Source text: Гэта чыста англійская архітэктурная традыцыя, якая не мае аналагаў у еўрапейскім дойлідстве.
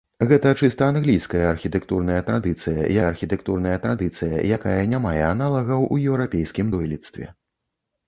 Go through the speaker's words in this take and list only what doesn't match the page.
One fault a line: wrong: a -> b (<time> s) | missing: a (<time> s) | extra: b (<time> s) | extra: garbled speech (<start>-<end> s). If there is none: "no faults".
extra: архітэктурная традыцыя (3.1 s)